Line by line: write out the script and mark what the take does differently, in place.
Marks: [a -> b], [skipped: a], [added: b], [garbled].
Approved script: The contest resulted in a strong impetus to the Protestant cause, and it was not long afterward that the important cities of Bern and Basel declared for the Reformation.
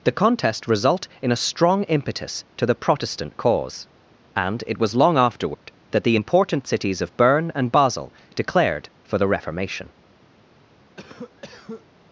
The contest [resulted -> result] in a strong impetus to the Protestant cause, and it was [skipped: not] long afterward that the important cities of Bern and Basel declared for the Reformation.